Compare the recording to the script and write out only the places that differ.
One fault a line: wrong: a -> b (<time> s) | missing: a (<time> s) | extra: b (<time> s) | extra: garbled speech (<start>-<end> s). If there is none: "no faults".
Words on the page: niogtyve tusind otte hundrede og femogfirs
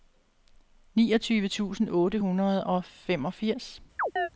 no faults